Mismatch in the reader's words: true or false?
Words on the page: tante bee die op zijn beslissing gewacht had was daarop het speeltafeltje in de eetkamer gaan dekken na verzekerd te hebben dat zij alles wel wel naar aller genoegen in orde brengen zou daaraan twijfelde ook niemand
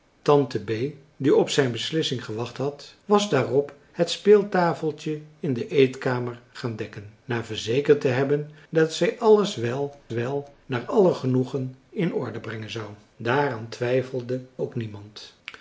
false